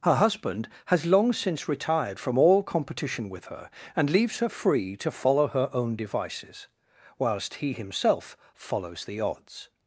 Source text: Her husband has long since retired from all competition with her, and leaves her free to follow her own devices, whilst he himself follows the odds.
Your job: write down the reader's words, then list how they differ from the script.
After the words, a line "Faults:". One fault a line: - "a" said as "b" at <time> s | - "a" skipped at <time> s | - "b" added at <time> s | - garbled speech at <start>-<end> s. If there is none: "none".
Her husband has long since retired from all competition with her, and leaves her free to follow her own devices, whilst he himself follows the odds.
Faults:
none